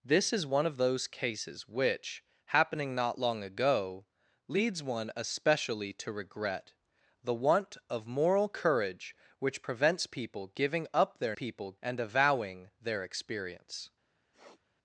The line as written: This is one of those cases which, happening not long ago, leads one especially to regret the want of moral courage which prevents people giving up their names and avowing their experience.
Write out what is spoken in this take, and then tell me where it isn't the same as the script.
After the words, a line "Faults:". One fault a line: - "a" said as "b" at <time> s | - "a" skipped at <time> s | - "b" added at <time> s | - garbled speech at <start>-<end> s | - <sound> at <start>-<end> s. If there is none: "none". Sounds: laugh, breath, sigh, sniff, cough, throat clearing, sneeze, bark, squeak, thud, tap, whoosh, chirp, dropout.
This is one of those cases which, happening not long ago, leads one especially to regret the want of moral courage which prevents people giving up their people and avowing their experience.
Faults:
- "names" said as "people" at 11.3 s
- sniff at 14.3-14.6 s